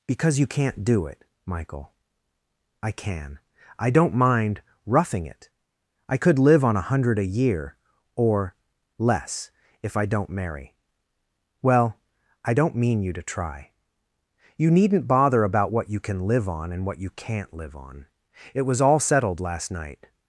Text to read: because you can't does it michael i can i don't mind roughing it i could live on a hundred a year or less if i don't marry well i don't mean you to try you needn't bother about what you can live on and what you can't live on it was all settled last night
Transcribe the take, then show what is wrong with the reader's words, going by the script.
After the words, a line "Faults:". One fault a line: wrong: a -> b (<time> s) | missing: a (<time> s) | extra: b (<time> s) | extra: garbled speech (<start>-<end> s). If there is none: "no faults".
because you can't do it michael i can i don't mind roughing it i could live on a hundred a year or less if i don't marry well i don't mean you to try you needn't bother about what you can live on and what you can't live on it was all settled last night
Faults:
wrong: does -> do (0.8 s)